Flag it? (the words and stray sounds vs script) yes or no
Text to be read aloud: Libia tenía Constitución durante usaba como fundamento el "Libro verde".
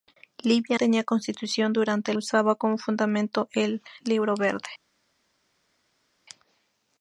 no